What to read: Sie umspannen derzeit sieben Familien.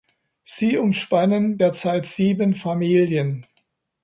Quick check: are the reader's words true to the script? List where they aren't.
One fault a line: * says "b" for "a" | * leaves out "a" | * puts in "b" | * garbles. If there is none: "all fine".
all fine